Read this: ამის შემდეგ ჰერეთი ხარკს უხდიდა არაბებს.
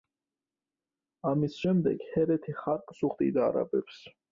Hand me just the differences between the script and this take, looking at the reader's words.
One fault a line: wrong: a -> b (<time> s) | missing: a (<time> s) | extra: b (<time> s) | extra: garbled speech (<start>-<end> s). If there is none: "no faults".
no faults